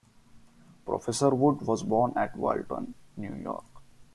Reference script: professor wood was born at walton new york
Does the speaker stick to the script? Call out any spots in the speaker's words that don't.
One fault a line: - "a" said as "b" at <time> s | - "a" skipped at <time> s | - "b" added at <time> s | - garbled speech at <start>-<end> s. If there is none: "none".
none